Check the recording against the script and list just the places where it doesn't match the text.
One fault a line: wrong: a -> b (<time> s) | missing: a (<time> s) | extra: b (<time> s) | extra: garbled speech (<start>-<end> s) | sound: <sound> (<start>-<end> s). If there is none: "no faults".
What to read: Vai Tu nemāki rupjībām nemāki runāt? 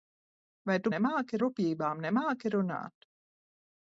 no faults